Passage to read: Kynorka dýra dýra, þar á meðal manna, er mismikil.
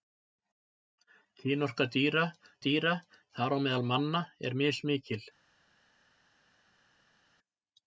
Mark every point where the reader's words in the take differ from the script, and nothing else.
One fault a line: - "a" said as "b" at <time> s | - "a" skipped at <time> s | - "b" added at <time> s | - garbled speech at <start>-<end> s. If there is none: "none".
none